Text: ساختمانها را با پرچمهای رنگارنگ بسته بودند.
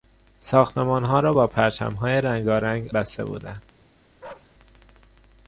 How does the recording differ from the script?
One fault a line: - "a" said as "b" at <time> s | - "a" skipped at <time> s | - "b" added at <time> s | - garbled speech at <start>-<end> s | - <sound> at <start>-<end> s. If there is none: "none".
- bark at 4.2-4.5 s